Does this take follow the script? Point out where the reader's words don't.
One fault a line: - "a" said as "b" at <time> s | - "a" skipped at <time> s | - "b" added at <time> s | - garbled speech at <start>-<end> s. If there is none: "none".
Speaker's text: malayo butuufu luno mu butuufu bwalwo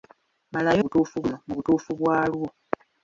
none